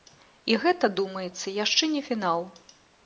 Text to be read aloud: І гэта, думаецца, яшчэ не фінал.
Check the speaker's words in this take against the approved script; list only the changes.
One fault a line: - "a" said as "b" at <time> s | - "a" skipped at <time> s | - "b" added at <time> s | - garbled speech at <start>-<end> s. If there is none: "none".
none